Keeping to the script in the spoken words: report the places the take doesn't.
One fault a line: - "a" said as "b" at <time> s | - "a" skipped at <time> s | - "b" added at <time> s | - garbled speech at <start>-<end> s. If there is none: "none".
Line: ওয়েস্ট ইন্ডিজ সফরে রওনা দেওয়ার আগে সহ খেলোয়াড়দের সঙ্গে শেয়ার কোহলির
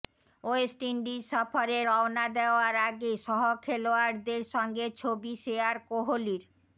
- "ছবি" added at 5.0 s